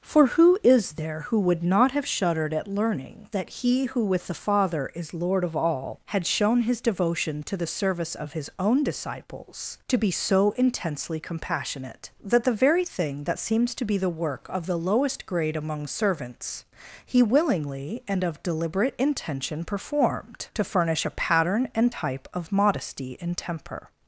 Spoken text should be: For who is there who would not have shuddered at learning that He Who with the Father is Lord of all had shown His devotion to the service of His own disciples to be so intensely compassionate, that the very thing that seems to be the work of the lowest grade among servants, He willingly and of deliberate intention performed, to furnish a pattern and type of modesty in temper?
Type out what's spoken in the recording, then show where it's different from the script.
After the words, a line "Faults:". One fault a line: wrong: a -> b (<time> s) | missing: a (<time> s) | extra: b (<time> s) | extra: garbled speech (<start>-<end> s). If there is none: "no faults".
For who is there who would not have shuddered at learning that He Who with the Father is Lord of all had shown His devotion to the service of His own disciples to be so intensely compassionate, that the very thing that seems to be the work of the lowest grade among servants, He willingly and of deliberate intention performed, to furnish a pattern and type of modesty in temper?
Faults:
no faults